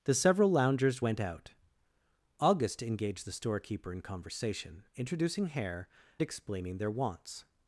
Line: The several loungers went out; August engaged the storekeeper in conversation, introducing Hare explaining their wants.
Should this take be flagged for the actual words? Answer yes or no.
no